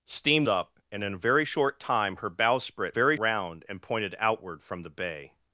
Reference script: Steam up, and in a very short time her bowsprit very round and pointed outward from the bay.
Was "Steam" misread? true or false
false